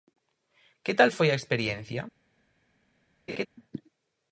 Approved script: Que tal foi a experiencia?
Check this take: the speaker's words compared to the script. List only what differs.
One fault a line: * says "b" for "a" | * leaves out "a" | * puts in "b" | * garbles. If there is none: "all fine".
all fine